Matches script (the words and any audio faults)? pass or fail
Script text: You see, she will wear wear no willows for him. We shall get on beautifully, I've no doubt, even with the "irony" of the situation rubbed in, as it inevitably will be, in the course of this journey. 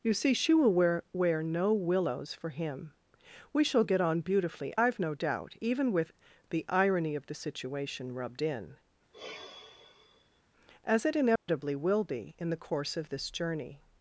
fail